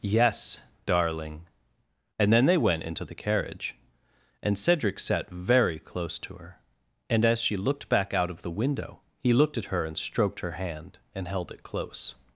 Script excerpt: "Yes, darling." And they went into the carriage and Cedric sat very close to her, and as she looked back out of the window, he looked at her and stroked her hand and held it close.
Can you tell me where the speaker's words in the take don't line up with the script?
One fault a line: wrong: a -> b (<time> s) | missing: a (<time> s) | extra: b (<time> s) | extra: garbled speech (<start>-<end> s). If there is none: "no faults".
extra: then (2.3 s)